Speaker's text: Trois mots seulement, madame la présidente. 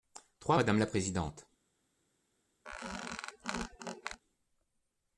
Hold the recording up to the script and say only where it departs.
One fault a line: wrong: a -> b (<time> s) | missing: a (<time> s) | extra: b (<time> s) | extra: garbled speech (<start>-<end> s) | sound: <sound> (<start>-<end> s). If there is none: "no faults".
missing: mots seulement (0.6 s)
sound: squeak (2.7-4.2 s)